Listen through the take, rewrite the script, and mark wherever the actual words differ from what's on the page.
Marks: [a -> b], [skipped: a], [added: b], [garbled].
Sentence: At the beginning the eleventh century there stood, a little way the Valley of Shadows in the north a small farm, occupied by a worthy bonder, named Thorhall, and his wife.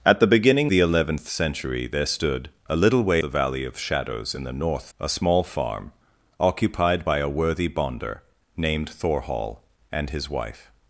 At the beginning the eleventh century there stood, a little way the Valley of Shadows in the north a small farm, occupied by a worthy bonder, named Thorhall, and his wife.